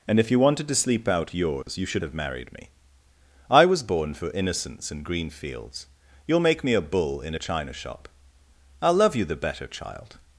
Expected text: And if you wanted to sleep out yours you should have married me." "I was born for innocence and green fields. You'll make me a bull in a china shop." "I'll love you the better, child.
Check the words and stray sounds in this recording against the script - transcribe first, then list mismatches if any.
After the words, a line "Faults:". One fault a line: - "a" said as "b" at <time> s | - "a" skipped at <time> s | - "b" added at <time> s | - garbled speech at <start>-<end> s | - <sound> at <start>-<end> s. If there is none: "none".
And if you wanted to sleep out yours you should have married me." "I was born for innocence and green fields. You'll make me a bull in a china shop." "I'll love you the better, child.
Faults:
- dropout at 1.6-1.7 s